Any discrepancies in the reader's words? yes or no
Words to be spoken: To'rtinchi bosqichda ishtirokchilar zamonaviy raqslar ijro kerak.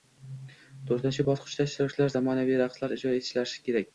yes